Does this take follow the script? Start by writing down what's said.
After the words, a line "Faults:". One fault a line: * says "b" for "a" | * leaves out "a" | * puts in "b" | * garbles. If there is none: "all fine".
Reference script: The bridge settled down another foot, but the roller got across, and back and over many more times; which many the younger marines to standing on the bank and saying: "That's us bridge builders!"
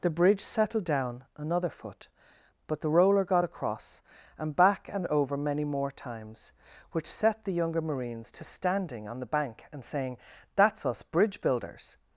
The bridge settled down another foot, but the roller got across, and back and over many more times; which set the younger marines to standing on the bank and saying: "That's us bridge builders!"
Faults:
* says "set" for "many"